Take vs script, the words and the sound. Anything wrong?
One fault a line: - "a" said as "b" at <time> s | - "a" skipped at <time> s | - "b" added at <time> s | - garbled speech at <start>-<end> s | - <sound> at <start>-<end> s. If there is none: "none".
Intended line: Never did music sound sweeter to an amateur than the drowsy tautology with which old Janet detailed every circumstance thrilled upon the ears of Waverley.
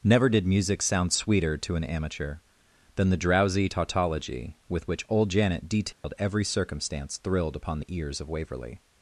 - dropout at 5.9-6.0 s